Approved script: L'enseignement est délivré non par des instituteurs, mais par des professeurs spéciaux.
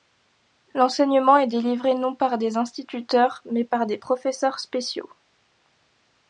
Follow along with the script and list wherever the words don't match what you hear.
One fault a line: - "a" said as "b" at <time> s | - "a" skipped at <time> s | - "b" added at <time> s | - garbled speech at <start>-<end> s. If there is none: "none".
none